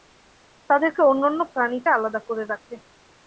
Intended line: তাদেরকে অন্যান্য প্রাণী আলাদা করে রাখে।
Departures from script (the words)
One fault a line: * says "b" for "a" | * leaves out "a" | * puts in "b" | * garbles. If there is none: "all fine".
all fine